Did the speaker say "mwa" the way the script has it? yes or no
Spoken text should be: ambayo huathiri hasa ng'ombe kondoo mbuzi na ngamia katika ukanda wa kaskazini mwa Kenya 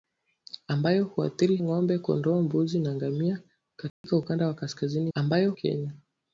no